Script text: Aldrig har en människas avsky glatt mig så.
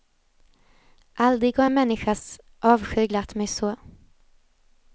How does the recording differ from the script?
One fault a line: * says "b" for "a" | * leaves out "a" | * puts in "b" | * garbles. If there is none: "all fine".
all fine